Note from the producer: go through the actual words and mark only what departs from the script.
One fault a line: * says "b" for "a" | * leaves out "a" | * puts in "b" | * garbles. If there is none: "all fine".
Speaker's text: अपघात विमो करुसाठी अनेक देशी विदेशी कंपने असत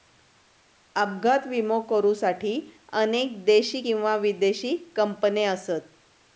* puts in "किंवा"